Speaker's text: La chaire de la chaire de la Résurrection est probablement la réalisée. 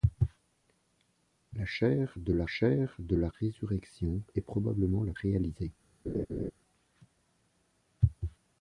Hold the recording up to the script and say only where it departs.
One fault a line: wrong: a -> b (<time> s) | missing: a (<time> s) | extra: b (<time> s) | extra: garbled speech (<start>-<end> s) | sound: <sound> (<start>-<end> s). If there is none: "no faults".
sound: laugh (6.1-6.5 s)